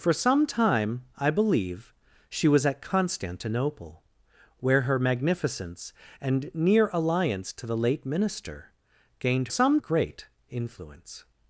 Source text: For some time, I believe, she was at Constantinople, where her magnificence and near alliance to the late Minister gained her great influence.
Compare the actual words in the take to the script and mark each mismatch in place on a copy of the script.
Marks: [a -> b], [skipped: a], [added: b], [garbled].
For some time, I believe, she was at Constantinople, where her magnificence and near alliance to the late Minister gained [her -> some] great influence.